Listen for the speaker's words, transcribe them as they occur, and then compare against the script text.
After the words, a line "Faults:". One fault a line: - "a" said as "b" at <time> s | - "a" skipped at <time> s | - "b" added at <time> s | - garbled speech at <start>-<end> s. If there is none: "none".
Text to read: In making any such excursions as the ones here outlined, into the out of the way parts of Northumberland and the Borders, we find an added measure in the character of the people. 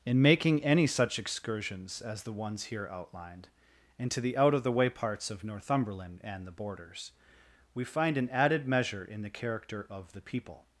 In making any such excursions as the ones here outlined, into the out of the way parts of Northumberland and the Borders, we find an added measure in the character of the people.
Faults:
none